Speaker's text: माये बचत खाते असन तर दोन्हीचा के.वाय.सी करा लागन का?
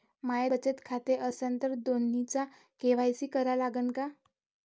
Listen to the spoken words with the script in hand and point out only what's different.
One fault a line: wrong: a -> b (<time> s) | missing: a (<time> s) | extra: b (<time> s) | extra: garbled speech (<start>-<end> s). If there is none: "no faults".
no faults